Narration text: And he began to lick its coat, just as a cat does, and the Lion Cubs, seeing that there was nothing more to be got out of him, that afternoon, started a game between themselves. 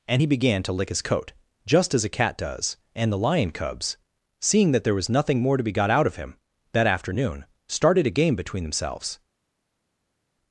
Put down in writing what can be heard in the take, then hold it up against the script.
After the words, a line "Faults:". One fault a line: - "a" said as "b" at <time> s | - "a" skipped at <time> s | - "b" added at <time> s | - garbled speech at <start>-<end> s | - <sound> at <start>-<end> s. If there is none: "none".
And he began to lick his coat, just as a cat does, and the Lion Cubs, seeing that there was nothing more to be got out of him, that afternoon, started a game between themselves.
Faults:
- "its" said as "his" at 0.9 s